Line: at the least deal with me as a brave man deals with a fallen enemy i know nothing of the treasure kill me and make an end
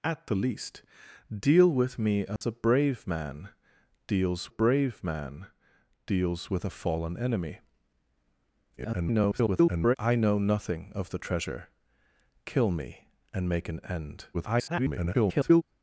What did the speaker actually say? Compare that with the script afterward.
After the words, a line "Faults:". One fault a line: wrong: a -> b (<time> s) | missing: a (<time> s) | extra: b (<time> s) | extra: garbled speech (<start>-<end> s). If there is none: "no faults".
at the least deal with me as a brave man deals brave man deals with a fallen enemy [garbled] i know nothing of the treasure kill me and make an end [garbled]
Faults:
extra: brave man deals (4.5 s)
extra: garbled speech (8.8-10.0 s)
extra: garbled speech (14.3-15.6 s)